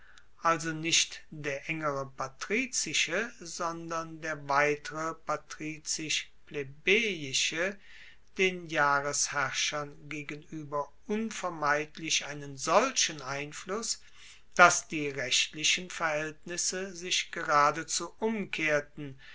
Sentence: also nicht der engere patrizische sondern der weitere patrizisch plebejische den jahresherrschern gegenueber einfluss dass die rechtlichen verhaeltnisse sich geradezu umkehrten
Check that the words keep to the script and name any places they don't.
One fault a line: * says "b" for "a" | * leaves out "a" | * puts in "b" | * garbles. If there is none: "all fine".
* puts in "unvermeidlich einen solchen"